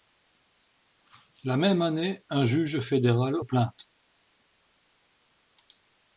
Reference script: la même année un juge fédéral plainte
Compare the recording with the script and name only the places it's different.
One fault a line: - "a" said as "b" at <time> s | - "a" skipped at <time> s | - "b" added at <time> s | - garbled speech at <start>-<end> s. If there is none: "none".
none